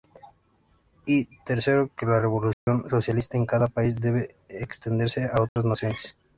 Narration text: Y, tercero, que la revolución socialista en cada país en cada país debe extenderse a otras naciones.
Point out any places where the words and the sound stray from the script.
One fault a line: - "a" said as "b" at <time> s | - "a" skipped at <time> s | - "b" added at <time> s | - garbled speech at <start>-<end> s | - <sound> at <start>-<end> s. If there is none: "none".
- dropout at 2.5-2.7 s
- "en cada país" skipped at 4.0 s
- dropout at 5.5-5.6 s